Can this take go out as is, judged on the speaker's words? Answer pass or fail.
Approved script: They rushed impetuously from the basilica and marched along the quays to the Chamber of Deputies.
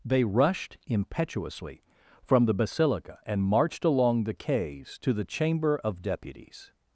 pass